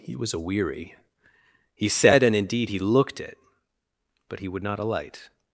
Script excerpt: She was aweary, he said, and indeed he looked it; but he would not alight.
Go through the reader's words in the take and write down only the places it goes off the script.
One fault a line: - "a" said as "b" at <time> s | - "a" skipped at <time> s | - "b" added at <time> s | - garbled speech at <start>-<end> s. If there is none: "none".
- "She" said as "He" at 0.0 s